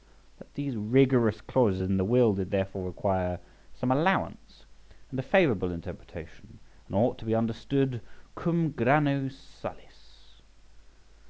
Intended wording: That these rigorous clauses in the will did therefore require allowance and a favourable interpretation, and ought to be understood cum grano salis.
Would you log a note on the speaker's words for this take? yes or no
yes